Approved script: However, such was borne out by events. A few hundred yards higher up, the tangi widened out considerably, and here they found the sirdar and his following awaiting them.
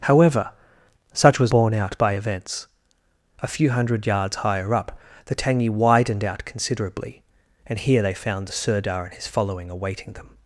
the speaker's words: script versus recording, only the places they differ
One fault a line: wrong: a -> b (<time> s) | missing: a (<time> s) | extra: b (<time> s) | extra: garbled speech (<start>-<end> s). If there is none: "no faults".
no faults